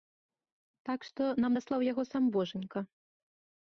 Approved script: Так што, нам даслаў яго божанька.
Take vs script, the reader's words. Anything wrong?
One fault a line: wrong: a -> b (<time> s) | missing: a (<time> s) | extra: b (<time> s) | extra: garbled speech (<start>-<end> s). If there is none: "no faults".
extra: сам (2.1 s)